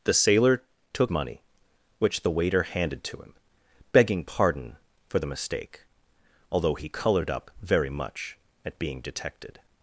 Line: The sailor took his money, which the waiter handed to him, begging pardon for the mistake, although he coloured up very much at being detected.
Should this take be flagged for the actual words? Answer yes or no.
yes